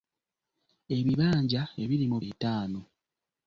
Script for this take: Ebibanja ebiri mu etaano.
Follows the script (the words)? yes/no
yes